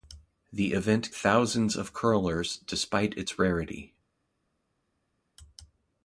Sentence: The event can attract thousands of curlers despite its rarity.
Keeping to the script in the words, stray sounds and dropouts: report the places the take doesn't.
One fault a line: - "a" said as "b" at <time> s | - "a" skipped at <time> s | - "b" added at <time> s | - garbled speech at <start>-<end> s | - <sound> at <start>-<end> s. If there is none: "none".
- "can attract" skipped at 1.1 s